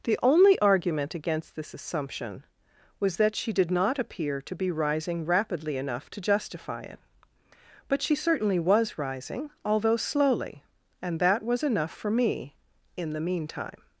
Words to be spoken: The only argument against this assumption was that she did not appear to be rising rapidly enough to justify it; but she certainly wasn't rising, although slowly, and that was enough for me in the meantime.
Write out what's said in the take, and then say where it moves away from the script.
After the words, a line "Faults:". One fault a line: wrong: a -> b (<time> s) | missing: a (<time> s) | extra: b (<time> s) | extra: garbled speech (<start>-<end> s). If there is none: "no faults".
The only argument against this assumption was that she did not appear to be rising rapidly enough to justify it; but she certainly was rising, although slowly, and that was enough for me in the meantime.
Faults:
wrong: wasn't -> was (8.6 s)